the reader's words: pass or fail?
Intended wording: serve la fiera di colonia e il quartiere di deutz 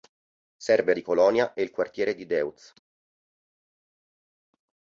fail